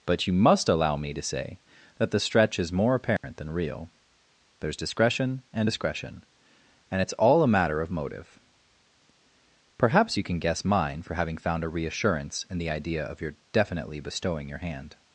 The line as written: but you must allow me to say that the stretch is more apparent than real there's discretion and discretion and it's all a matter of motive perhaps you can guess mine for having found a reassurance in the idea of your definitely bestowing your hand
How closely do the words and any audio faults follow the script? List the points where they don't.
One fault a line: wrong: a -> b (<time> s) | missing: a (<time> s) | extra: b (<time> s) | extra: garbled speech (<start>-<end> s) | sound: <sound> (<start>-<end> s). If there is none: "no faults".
sound: dropout (3.2-3.2 s)